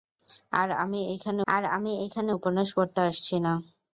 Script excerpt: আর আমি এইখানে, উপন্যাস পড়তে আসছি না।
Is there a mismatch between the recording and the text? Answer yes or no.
yes